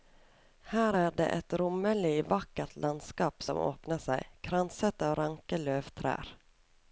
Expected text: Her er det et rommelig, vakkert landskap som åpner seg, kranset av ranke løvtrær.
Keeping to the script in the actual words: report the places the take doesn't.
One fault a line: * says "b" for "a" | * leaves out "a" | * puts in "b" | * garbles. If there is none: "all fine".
all fine